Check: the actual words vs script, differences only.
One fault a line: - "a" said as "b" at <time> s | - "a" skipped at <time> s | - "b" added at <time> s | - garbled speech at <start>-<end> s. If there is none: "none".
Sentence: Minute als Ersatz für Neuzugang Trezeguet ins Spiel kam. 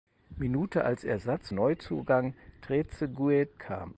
- "für" skipped at 1.5 s
- "ins Spiel" skipped at 3.5 s